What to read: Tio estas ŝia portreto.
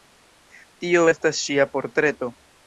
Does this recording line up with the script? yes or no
yes